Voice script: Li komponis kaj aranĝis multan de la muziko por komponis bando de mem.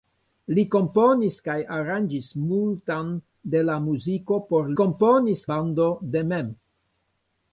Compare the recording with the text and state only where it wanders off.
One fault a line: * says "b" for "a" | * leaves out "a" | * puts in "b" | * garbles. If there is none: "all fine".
all fine